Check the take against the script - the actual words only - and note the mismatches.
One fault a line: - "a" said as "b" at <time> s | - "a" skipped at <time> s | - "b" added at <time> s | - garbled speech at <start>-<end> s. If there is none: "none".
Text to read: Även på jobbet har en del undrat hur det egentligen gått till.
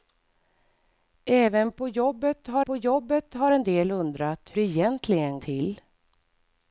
- "på jobbet har" added at 2.6 s
- "hur" skipped at 4.5 s
- "gått" skipped at 5.4 s